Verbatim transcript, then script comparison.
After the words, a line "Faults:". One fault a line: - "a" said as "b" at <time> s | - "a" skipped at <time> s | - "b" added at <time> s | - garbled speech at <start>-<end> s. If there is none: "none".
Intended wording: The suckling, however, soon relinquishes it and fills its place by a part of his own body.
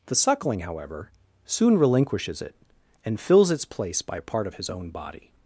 The suckling, however, soon relinquishes it and fills its place by a part of his own body.
Faults:
none